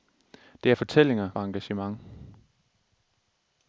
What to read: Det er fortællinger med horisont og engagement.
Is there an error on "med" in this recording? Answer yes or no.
yes